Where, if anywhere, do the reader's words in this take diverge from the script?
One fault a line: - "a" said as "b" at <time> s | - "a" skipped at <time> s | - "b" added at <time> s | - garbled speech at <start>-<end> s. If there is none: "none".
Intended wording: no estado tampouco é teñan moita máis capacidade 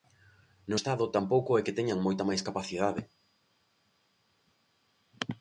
- "que" added at 1.7 s